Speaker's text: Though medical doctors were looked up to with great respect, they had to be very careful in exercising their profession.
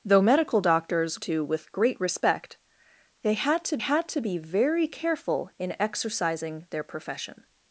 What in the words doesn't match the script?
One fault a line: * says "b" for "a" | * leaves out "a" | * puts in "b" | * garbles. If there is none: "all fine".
* leaves out "were looked up"
* puts in "had to"